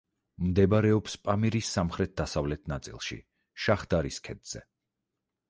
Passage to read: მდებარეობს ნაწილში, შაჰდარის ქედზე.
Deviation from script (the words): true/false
true